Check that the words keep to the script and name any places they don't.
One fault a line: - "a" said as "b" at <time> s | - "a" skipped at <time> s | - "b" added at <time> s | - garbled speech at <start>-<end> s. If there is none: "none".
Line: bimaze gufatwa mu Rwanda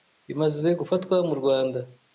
none